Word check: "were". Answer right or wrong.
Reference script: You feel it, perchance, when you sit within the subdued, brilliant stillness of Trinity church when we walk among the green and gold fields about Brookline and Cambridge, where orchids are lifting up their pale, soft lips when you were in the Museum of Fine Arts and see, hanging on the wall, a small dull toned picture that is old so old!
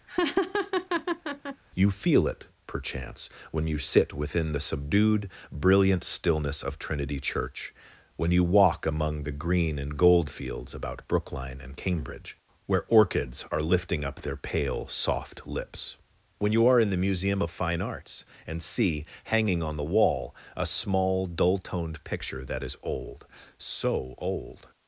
wrong